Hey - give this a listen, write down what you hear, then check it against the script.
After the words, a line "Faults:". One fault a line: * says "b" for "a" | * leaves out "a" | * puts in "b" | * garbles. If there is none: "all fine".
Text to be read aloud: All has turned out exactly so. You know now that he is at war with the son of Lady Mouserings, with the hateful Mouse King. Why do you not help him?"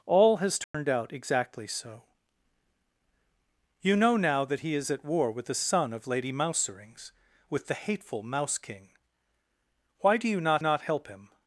All has turned out exactly so. You know now that he is at war with the son of Lady Mouserings, with the hateful Mouse King. Why do you not not help him?"
Faults:
* puts in "not"